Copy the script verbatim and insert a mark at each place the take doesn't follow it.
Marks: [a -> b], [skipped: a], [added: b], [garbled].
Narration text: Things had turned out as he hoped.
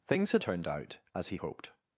Things had turned out as he hoped.